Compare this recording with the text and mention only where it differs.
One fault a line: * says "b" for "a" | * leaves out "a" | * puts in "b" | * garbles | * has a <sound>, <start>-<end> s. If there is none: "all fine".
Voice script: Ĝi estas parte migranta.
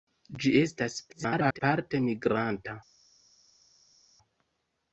* garbles